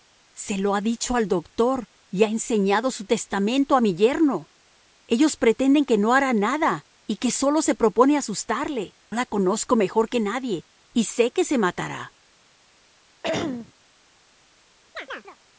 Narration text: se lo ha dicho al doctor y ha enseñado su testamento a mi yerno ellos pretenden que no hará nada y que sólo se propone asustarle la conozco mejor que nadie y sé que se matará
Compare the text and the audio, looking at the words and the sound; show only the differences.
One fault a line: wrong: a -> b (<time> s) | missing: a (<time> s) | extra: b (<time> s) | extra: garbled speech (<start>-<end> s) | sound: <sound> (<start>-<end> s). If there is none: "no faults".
sound: throat clearing (13.2-13.7 s)
sound: chirp (14.9-15.4 s)